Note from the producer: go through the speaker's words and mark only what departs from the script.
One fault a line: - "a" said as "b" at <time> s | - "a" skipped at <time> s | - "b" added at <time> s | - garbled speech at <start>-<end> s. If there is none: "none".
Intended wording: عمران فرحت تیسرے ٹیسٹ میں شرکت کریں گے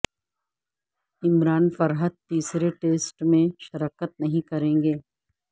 - "نہیں" added at 4.2 s